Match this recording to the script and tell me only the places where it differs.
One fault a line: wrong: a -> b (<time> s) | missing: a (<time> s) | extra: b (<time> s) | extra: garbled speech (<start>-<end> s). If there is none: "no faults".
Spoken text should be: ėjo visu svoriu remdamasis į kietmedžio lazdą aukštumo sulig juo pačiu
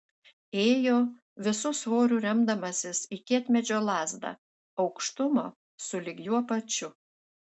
no faults